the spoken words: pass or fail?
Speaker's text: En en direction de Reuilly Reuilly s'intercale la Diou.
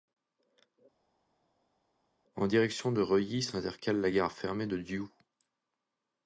fail